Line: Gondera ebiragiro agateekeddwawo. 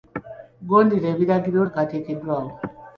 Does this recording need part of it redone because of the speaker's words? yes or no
no